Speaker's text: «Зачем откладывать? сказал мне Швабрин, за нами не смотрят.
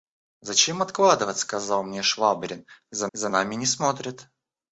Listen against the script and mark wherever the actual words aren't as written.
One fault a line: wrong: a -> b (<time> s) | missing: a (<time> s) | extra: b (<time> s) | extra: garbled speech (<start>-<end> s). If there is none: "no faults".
extra: за (3.1 s)